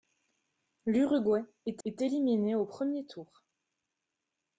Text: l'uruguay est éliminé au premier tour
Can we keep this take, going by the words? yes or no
no